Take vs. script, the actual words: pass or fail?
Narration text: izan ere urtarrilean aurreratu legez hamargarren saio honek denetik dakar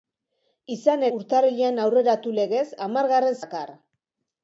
fail